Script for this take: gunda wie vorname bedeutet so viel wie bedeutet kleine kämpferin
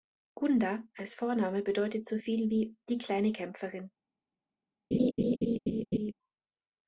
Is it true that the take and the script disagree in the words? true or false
true